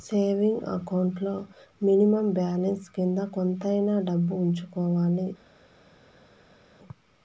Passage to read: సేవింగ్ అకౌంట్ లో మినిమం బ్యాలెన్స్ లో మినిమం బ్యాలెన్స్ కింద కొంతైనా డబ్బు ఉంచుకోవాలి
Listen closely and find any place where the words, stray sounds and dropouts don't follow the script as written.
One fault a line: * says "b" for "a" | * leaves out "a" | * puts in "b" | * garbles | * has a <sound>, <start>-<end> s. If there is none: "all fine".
* leaves out "లో మినిమం బ్యాలెన్స్"